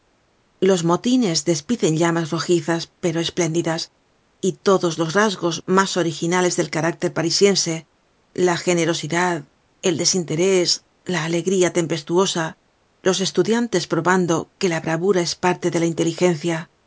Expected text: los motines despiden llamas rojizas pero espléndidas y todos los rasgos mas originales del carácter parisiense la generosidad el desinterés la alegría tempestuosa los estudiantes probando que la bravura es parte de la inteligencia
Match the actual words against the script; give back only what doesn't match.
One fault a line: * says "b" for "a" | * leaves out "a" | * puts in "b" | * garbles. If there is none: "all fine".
all fine